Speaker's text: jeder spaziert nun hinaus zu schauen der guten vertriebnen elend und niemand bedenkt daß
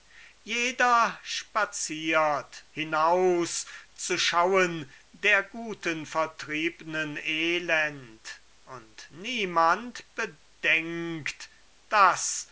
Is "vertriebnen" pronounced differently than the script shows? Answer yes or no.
no